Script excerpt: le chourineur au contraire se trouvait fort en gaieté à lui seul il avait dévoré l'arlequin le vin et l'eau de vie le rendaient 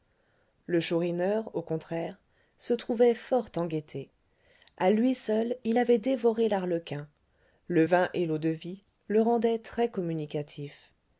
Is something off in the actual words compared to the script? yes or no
no